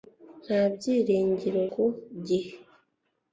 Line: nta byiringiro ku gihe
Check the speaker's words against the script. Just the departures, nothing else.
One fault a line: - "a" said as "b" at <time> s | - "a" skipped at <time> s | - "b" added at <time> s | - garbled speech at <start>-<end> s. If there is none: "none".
none